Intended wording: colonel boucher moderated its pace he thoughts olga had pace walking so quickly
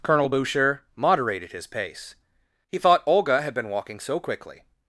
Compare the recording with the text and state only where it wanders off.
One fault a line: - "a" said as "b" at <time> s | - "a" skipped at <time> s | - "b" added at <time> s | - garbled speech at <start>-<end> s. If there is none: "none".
- "its" said as "his" at 1.5 s
- "thoughts" said as "thought" at 2.8 s
- "pace" said as "been" at 3.5 s